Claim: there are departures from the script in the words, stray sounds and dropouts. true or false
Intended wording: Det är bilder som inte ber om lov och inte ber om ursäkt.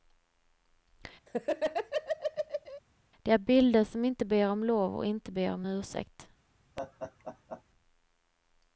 true